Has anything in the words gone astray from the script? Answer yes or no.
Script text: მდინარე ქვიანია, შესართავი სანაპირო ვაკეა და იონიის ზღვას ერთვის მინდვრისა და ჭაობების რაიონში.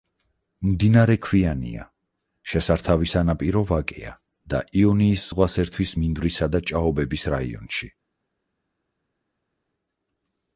no